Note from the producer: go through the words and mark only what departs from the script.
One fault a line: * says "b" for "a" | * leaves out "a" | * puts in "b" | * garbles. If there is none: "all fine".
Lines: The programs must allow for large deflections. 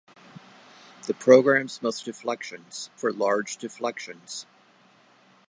* says "deflections" for "allow"